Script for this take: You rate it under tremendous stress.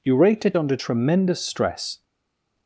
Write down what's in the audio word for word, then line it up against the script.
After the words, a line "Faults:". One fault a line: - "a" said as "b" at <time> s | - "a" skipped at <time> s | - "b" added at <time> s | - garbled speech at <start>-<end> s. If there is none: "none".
You rate it under tremendous stress.
Faults:
none